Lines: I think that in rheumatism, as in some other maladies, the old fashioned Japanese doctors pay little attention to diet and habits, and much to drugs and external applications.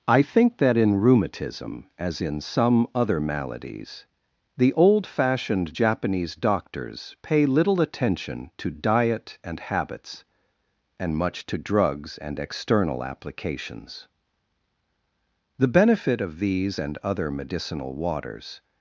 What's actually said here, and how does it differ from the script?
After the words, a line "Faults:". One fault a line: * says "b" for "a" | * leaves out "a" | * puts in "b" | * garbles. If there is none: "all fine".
I think that in rheumatism, as in some other maladies, the old fashioned Japanese doctors pay little attention to diet and habits, and much to drugs and external applications. The benefit of these and other medicinal waters
Faults:
* puts in "The benefit of these and other medicinal waters"